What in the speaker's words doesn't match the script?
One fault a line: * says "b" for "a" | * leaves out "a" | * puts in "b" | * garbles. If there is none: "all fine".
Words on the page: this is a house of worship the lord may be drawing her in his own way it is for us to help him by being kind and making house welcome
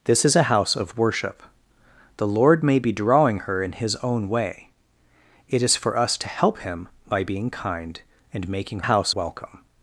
all fine